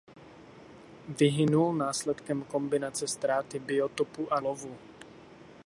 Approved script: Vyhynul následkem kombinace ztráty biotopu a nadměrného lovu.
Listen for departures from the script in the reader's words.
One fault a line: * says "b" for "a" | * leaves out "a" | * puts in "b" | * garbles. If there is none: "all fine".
* leaves out "nadměrného"